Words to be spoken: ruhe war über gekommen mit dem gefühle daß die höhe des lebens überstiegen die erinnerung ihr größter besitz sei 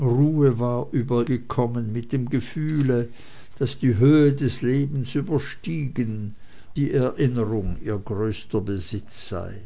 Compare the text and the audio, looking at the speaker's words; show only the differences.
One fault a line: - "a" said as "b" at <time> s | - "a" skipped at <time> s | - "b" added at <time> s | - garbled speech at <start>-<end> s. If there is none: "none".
none